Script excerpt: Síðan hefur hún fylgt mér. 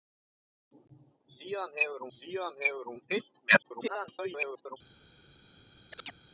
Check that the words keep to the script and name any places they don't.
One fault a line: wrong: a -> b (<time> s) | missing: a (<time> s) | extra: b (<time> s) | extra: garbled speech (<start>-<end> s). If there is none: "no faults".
extra: síðan hefur (2.2 s)
extra: garbled speech (3.6-4.8 s)